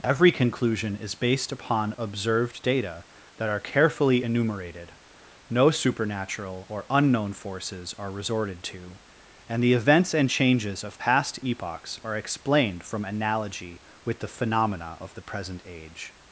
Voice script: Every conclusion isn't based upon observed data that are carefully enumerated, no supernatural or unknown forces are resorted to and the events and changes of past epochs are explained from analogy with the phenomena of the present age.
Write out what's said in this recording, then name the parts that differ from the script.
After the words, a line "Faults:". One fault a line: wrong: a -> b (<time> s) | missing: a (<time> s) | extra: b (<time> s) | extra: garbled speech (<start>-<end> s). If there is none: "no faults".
Every conclusion is based upon observed data that are carefully enumerated, no supernatural or unknown forces are resorted to and the events and changes of past epochs are explained from analogy with the phenomena of the present age.
Faults:
wrong: isn't -> is (1.0 s)